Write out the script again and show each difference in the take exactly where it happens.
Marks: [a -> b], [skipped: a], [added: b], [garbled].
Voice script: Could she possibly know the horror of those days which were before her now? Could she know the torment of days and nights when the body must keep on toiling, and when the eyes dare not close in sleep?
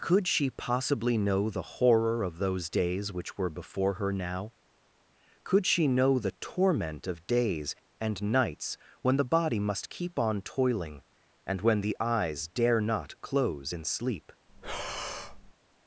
Could she possibly know the horror of those days which were before her now? Could she know the torment of days and nights when the body must keep on toiling, and when the eyes dare not close in sleep?